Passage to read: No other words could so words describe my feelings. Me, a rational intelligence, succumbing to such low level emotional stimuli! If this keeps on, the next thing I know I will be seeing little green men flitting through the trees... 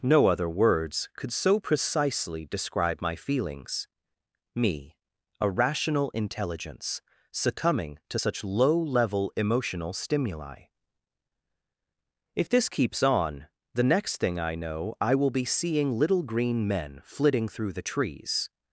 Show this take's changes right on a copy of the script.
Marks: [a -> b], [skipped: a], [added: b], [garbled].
No other words could so [words -> precisely] describe my feelings. Me, a rational intelligence, succumbing to such low level emotional stimuli! If this keeps on, the next thing I know I will be seeing little green men flitting through the trees...